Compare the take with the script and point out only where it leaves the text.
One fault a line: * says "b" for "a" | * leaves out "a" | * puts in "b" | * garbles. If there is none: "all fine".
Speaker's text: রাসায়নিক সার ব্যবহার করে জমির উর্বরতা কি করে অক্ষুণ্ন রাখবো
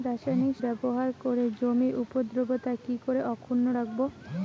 * leaves out "সার"